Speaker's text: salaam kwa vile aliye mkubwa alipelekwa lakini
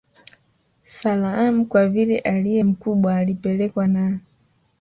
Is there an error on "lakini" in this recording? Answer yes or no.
yes